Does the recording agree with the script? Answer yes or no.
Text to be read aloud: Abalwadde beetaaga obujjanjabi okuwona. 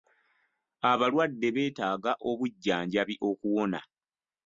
yes